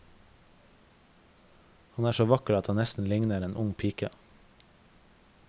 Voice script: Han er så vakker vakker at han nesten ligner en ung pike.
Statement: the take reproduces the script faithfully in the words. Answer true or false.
false